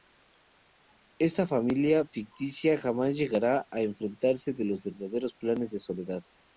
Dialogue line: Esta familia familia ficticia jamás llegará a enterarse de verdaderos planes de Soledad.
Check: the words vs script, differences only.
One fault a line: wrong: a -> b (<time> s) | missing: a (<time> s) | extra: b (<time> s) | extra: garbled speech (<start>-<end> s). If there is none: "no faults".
missing: familia (2.1 s)
extra: los (4.6 s)